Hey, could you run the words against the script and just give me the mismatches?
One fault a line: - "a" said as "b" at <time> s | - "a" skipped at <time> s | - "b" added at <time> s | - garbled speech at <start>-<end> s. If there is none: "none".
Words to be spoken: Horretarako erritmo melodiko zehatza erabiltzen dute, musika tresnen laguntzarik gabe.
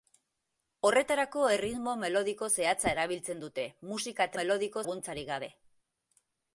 - "tresnen" said as "melodiko" at 4.4 s